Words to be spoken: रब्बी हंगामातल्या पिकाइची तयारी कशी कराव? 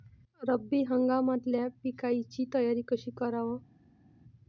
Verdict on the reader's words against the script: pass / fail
pass